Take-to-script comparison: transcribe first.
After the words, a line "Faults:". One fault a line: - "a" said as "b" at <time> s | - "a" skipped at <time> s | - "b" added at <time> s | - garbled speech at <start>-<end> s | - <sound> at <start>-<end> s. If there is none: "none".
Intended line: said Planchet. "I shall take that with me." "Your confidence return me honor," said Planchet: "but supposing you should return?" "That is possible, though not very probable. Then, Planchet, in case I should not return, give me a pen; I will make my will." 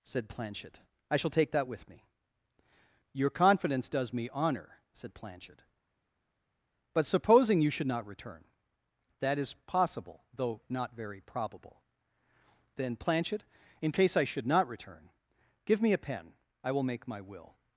said Planchet. "I shall take that with me." "Your confidence does me honor," said Planchet: "but supposing you should not return?" "That is possible, though not very probable. Then, Planchet, in case I should not return, give me a pen; I will make my will."
Faults:
- "return" said as "does" at 3.9 s
- "not" added at 7.9 s